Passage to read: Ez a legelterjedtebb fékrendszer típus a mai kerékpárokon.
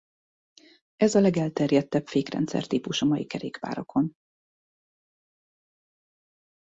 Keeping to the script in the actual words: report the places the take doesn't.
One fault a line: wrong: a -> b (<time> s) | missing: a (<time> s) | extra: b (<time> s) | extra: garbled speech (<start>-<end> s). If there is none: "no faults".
no faults